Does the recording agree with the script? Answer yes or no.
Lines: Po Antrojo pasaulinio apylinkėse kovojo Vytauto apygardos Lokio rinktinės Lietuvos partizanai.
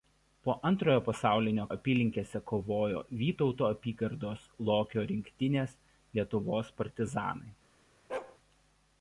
yes